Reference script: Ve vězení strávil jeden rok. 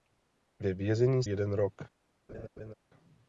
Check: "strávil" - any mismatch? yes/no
yes